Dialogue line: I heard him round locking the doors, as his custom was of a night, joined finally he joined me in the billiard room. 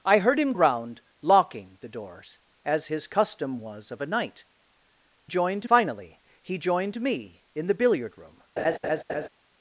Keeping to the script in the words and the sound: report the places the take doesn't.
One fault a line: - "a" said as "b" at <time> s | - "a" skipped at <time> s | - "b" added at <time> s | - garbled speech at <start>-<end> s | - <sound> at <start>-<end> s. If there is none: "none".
- laugh at 8.6-9.3 s